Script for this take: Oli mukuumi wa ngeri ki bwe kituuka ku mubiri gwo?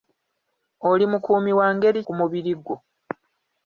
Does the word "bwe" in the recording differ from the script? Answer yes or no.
yes